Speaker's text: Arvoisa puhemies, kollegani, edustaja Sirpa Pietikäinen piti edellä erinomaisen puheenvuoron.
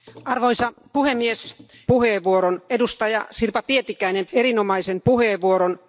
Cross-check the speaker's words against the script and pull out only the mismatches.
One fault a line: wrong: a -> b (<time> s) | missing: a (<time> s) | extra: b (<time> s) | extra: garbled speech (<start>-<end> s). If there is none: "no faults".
wrong: kollegani -> puheenvuoron (1.8 s)
missing: piti edellä (4.3 s)